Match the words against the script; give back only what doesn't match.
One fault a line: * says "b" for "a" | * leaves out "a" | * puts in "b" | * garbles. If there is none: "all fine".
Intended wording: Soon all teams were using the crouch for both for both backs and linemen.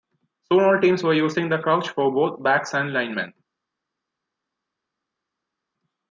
* leaves out "for both"